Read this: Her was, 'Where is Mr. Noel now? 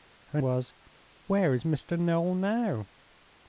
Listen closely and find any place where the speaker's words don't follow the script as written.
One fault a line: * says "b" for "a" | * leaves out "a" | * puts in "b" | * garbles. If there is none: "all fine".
all fine